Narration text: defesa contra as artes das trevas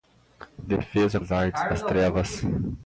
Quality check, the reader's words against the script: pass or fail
fail